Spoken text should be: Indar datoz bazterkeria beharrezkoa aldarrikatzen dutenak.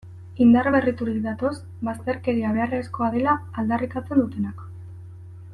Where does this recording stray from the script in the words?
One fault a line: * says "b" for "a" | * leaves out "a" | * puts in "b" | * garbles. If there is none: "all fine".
* puts in "berriturik"
* puts in "dela"